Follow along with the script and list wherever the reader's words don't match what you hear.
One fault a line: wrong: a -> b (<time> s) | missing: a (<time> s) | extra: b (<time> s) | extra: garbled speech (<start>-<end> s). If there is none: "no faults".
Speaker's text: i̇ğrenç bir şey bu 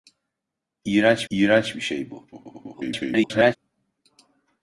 extra: i̇ğrenç (1.3 s)
extra: garbled speech (2.3-3.6 s)